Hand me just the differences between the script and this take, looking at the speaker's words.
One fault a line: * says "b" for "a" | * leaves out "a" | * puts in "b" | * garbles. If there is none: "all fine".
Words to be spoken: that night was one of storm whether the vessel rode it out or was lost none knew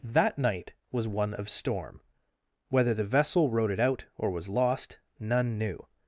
all fine